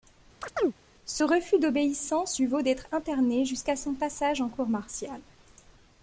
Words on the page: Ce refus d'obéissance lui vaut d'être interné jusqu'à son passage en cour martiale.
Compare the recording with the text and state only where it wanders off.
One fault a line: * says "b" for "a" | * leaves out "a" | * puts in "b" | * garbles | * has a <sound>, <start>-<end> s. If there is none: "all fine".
* has a chirp, 0.4-0.7 s